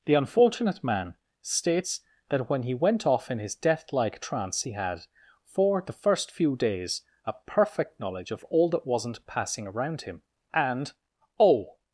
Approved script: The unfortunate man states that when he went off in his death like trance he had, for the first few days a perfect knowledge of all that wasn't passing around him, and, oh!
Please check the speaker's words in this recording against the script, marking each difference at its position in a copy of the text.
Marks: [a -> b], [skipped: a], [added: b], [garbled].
The unfortunate man states that when he went off in his death like trance he had, for the first few days a perfect knowledge of all that wasn't passing around him, and, oh!